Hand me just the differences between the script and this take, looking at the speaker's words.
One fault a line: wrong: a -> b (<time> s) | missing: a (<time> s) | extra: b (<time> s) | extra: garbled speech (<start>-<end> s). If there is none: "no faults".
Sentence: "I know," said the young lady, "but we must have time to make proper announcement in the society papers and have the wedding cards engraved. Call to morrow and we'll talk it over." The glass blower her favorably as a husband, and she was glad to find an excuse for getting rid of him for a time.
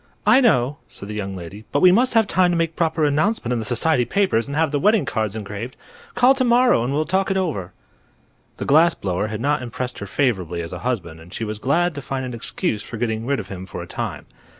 extra: had not impressed (9.3 s)